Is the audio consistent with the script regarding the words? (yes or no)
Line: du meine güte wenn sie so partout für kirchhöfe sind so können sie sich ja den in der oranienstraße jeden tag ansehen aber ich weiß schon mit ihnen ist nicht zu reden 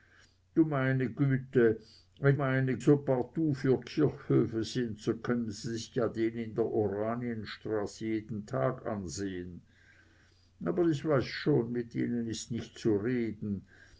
no